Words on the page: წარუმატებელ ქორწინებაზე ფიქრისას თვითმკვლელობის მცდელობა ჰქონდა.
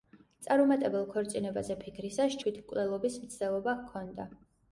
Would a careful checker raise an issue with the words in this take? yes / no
no